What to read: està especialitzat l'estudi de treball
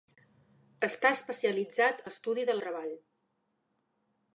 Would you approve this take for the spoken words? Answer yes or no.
yes